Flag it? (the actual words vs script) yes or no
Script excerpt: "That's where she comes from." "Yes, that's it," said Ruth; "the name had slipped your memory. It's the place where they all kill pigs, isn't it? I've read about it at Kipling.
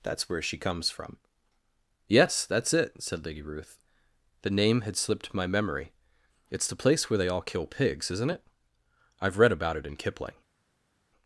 yes